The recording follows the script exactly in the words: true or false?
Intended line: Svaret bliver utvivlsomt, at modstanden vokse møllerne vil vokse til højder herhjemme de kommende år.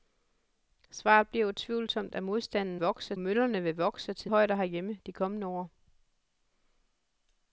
true